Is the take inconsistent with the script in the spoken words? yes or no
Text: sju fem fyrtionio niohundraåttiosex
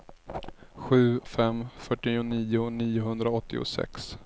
no